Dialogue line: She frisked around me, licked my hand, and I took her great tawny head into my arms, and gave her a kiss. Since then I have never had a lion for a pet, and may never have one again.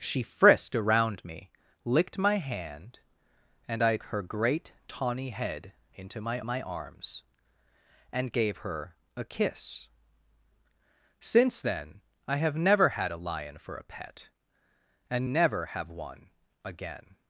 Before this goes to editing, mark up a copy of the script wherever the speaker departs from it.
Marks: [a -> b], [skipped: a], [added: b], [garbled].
She frisked around me, licked my hand, and I [skipped: took] her great tawny head into my [added: my] arms, and gave her a kiss. Since then I have never had a lion for a pet, and [skipped: may] never have one again.